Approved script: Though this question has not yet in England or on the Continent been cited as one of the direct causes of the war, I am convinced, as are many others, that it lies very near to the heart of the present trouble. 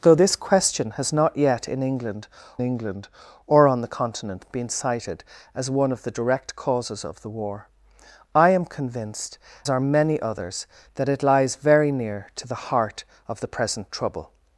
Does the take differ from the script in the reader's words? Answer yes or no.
yes